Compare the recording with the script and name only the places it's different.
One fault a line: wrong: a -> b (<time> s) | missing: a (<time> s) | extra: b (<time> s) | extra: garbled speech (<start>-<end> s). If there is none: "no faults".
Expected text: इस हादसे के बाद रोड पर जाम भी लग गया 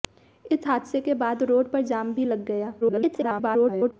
extra: garbled speech (2.8-3.9 s)